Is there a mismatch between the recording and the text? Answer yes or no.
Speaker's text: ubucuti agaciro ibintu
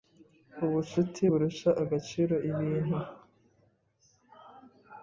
yes